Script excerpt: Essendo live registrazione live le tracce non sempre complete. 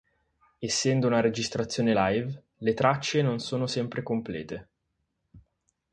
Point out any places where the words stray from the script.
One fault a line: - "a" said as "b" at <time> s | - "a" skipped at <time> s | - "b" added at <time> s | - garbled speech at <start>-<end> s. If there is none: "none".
- "live" said as "una" at 1.1 s
- "sono" added at 3.4 s